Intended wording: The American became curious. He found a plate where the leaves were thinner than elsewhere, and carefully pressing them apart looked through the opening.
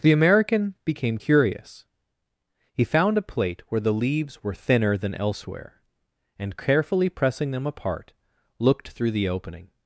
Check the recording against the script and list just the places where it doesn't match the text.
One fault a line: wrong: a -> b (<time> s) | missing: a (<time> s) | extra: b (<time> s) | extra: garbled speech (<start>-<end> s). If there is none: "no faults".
no faults